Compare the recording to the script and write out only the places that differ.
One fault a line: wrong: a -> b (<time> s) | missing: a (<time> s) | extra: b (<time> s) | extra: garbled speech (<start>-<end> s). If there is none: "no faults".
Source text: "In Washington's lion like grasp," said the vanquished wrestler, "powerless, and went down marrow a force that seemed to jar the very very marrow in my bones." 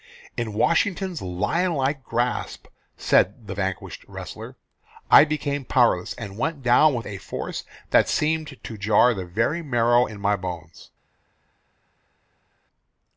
extra: I became (5.1 s)
wrong: marrow -> with (6.9 s)
missing: very (9.6 s)